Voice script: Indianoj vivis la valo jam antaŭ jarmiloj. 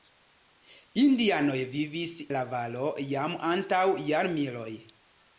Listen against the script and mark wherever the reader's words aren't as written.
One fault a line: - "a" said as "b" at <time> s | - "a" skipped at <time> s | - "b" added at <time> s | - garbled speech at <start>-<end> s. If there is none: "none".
none